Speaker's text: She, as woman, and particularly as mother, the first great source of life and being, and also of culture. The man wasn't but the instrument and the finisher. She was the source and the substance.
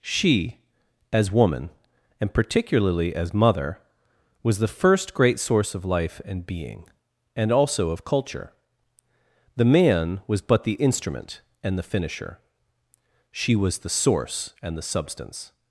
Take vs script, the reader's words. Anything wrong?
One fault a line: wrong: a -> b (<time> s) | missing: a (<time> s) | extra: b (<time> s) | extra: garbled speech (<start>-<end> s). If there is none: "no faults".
extra: was (4.4 s)
wrong: wasn't -> was (10.3 s)